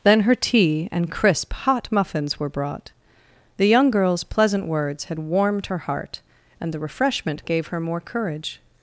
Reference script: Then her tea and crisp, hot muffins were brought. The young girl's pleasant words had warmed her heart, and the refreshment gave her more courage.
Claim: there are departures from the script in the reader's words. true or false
false